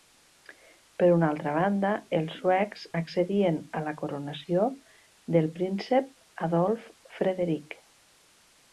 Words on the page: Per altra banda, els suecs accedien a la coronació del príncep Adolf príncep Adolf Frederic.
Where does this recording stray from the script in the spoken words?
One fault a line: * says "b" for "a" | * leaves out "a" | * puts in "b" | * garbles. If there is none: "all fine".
* puts in "una"
* leaves out "príncep Adolf"